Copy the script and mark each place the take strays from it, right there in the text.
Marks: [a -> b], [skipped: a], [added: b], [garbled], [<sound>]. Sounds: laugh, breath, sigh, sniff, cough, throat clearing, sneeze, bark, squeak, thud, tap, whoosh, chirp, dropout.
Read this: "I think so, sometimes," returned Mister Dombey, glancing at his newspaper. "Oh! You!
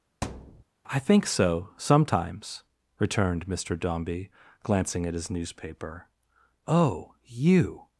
[thud] "I think so, sometimes," returned Mister Dombey, glancing at his newspaper. "Oh! You!